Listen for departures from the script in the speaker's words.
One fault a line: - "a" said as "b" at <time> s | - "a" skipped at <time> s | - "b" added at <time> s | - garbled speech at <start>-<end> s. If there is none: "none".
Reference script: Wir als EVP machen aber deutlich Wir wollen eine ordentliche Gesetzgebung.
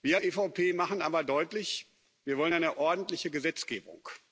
- "als" skipped at 0.2 s